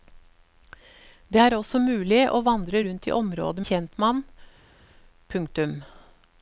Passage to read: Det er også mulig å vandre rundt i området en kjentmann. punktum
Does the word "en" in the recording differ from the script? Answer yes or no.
no